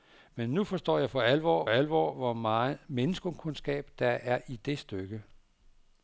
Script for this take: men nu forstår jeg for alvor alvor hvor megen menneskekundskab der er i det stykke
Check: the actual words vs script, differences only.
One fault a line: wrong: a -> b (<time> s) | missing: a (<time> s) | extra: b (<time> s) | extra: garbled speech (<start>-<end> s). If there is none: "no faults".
no faults